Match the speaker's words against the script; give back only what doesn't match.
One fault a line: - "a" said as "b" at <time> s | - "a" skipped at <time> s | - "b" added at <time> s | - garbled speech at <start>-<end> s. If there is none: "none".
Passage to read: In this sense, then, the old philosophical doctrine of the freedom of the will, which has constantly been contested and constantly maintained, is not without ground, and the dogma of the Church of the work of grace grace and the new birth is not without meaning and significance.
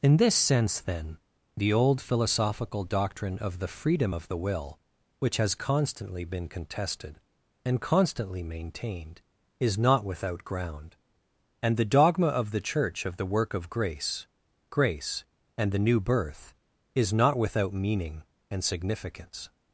none